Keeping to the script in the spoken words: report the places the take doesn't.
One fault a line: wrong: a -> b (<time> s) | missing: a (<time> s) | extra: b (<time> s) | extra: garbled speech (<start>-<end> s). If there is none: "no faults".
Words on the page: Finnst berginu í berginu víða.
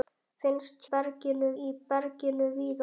no faults